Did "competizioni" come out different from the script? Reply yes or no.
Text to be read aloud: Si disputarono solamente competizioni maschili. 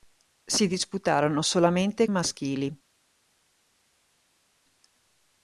yes